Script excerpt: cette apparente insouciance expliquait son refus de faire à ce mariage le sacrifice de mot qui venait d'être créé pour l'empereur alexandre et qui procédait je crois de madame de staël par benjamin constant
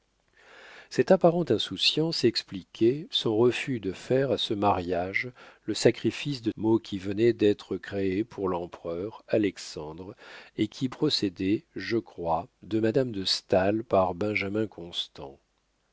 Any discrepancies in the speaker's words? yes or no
no